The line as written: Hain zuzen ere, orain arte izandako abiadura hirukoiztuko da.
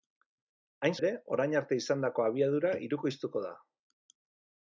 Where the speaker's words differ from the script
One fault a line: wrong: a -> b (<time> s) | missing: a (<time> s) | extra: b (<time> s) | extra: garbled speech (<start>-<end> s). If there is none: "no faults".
missing: zuzen (0.9 s)